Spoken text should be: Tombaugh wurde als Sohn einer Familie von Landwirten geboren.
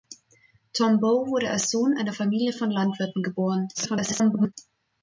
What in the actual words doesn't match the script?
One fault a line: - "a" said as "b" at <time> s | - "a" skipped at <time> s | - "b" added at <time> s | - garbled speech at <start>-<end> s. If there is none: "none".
- garbled speech at 3.7-4.5 s